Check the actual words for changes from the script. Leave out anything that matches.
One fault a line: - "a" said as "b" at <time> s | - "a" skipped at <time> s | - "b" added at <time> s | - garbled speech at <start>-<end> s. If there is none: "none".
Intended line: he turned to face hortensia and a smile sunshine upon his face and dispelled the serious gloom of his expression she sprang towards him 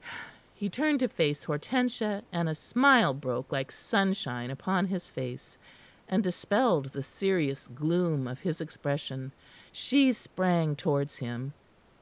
- "broke like" added at 3.1 s